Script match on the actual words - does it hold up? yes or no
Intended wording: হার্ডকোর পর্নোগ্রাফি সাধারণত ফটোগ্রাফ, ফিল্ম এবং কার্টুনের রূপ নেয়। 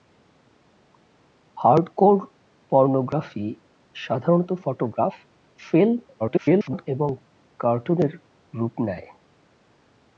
no